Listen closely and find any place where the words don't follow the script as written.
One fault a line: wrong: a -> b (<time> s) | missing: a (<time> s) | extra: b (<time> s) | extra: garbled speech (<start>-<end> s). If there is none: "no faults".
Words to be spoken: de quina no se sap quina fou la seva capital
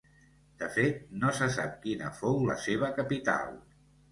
wrong: quina -> fet (0.8 s)